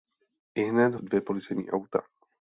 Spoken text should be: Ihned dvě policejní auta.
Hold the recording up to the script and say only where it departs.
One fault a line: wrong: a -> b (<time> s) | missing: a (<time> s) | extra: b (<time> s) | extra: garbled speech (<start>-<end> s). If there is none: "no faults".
no faults